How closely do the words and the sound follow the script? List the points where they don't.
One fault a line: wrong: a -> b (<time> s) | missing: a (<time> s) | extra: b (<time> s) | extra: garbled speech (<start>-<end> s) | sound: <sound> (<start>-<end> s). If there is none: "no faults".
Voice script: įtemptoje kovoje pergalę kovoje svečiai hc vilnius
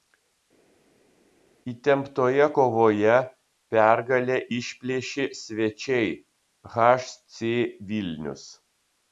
wrong: kovoje -> išplėšė (4.6 s)